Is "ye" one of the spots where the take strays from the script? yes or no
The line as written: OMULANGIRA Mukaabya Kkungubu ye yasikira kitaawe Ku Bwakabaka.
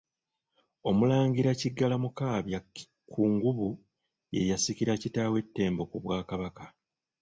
no